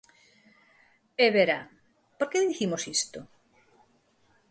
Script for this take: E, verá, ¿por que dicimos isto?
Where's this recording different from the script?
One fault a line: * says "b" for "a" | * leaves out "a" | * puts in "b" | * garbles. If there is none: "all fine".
all fine